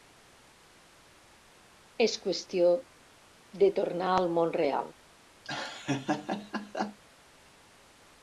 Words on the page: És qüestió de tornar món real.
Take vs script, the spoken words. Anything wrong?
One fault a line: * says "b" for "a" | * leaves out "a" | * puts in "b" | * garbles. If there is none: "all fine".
* puts in "al"